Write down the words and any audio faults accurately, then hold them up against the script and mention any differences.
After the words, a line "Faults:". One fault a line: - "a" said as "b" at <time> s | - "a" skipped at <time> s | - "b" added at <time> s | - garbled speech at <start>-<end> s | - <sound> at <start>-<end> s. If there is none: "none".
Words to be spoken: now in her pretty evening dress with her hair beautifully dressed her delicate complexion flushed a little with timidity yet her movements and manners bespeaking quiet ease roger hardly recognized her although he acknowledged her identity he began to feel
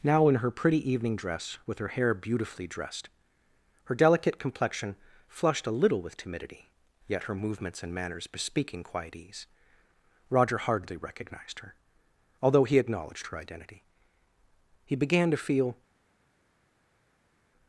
now in her pretty evening dress with her hair beautifully dressed her delicate complexion flushed a little with timidity yet her movements and manners bespeaking quiet ease roger hardly recognized her although he acknowledged her identity he began to feel
Faults:
none